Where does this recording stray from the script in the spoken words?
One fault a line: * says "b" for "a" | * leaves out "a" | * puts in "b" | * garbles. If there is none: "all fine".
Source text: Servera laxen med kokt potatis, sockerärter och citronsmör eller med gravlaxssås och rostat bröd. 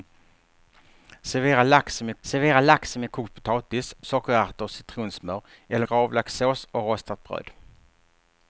* puts in "servera laxen med"
* leaves out "med"